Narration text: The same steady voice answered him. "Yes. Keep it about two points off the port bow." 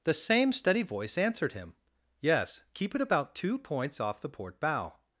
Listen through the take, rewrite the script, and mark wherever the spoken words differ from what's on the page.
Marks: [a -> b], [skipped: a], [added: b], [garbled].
The same steady voice answered him. "Yes. Keep it about two points off the port bow."